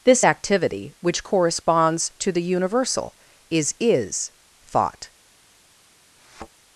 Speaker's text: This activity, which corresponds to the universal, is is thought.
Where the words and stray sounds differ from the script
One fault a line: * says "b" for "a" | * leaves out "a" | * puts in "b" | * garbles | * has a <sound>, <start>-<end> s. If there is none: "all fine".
* has a thud, 6.2-6.5 s